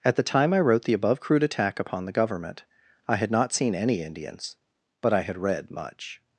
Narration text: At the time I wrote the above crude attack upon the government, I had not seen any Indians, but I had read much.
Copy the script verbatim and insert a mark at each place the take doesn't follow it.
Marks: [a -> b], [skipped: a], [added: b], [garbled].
At the time I wrote the above crude attack upon the government, I had not seen any Indians, but I had read much.